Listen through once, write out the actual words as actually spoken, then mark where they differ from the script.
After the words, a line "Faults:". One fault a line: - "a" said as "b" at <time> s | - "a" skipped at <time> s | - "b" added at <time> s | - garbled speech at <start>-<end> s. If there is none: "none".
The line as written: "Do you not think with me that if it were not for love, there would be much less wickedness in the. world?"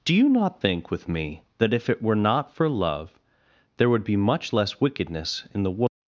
"Do you not think with me that if it were not for love, there would be much less wickedness in the. world?"
Faults:
none